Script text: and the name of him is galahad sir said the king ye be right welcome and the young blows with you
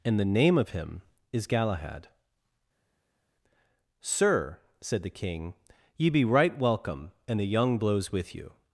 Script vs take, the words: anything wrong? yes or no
no